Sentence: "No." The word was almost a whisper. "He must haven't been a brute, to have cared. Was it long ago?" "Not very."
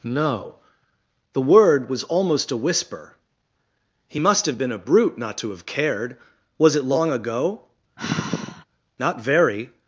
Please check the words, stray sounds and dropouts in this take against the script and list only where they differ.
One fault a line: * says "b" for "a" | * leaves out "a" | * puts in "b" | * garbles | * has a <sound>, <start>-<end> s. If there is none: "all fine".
* says "have" for "haven't"
* puts in "not"
* has a sigh, 8.0-8.6 s